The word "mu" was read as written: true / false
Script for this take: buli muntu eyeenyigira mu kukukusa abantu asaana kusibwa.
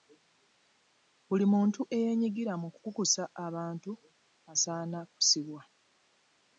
true